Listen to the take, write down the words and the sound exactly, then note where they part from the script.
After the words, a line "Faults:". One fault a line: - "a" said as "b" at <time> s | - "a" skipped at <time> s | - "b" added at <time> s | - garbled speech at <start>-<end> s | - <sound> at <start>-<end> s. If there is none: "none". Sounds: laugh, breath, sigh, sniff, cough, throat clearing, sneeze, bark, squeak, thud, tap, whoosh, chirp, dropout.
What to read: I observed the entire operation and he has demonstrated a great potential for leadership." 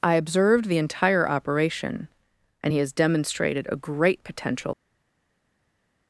I observed the entire operation and he has demonstrated a great potential."
Faults:
- "for leadership" skipped at 4.7 s